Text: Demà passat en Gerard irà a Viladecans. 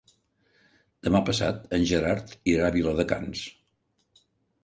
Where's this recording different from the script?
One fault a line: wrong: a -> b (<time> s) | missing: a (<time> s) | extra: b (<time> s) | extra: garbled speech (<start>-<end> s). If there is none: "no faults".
no faults